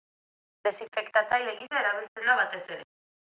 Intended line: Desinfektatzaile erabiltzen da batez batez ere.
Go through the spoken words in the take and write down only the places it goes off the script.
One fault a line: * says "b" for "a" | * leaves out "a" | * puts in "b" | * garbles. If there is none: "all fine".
* puts in "gisa"
* leaves out "batez"